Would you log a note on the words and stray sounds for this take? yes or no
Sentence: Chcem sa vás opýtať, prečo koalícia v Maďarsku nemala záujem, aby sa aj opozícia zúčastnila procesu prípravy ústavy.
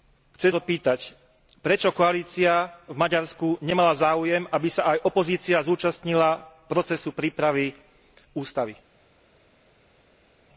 yes